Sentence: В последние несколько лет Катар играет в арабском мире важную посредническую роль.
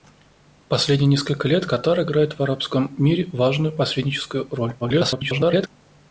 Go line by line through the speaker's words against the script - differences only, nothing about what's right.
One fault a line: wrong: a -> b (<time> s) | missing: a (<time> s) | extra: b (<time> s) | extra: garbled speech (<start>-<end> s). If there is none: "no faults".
extra: garbled speech (4.8-5.7 s)